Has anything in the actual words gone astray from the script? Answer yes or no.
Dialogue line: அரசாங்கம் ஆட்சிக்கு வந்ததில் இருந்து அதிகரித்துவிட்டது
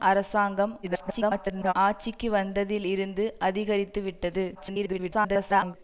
yes